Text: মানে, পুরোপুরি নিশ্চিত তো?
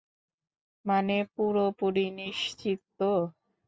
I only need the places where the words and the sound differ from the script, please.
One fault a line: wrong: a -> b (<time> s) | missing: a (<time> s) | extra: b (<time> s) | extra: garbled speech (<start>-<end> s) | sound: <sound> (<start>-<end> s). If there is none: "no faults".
no faults